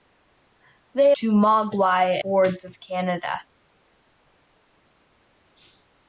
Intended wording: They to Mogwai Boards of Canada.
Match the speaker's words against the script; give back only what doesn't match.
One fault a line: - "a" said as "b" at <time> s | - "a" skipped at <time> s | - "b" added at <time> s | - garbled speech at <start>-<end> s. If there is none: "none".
none